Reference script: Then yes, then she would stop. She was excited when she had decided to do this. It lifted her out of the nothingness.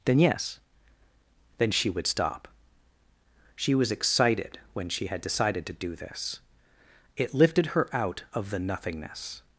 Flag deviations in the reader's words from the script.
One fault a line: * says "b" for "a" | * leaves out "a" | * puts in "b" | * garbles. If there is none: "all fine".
all fine